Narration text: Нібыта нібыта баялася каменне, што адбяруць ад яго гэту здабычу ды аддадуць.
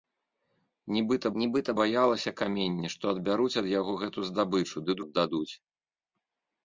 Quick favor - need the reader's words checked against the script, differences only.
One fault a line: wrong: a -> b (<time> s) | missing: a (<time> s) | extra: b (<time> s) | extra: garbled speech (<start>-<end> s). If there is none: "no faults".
no faults